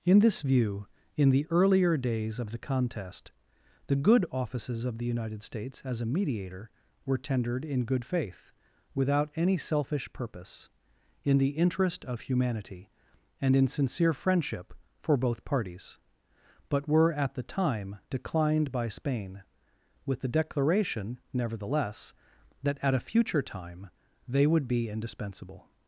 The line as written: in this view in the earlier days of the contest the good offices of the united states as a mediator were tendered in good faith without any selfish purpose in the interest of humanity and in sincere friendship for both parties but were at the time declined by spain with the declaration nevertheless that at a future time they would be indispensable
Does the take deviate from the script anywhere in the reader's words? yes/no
no